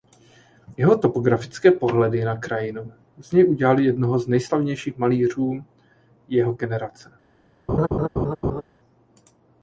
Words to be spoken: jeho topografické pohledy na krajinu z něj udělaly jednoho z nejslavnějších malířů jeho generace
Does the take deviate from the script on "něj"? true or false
false